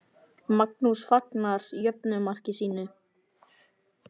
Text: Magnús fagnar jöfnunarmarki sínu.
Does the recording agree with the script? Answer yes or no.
yes